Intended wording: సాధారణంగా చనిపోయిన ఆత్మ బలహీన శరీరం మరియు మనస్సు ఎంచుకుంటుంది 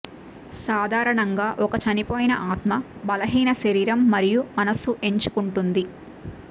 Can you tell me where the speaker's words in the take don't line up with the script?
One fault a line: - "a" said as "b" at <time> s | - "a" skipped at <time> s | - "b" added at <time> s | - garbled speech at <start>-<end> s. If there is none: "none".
- "ఒక" added at 1.6 s